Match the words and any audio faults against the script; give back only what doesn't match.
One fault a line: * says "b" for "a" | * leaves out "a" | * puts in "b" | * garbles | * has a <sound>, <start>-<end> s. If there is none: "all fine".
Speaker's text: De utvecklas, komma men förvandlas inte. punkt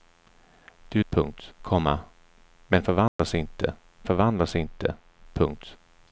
* says "punkt" for "utvecklas"
* has a dropout, 3.1-3.2 s
* puts in "förvandlas inte"